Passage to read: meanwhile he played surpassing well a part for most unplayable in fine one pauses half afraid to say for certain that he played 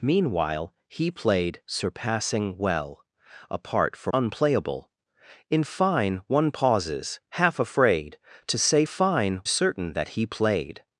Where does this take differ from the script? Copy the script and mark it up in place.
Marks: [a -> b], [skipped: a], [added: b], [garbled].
meanwhile he played surpassing well a part for [skipped: most] unplayable in fine one pauses half afraid to say [for -> fine] certain that he played